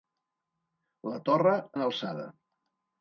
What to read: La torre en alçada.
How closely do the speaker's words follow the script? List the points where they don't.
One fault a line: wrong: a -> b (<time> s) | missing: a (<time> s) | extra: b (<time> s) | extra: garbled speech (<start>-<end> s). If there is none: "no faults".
no faults